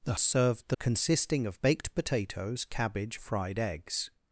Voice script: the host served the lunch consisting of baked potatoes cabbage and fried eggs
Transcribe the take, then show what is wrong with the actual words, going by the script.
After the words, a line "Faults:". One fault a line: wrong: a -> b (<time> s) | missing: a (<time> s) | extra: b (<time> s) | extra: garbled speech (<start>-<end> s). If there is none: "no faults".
the served the consisting of baked potatoes cabbage fried eggs
Faults:
missing: host (0.1 s)
missing: lunch (0.8 s)
missing: and (3.2 s)